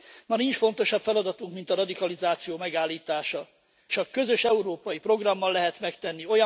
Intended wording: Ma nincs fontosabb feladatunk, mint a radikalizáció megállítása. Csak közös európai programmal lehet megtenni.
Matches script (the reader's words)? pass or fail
pass